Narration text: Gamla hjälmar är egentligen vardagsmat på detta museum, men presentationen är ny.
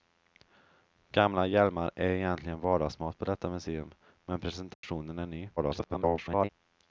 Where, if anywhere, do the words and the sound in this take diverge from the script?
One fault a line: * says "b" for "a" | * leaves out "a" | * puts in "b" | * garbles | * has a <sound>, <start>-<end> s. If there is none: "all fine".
* has a dropout, 4.7-4.8 s
* garbles